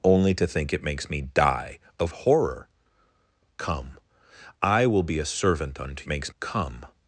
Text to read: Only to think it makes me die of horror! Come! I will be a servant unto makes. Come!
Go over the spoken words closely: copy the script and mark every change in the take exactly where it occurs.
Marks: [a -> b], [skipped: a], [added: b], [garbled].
Only to think it makes me die of horror! Come! I will be a servant unto makes. Come!